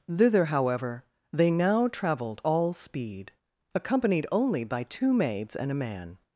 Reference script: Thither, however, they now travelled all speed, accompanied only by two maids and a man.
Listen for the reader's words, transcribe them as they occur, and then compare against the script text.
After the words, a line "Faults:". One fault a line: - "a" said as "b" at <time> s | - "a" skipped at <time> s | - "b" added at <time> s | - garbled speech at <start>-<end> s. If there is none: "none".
Thither, however, they now travelled all speed, accompanied only by two maids and a man.
Faults:
none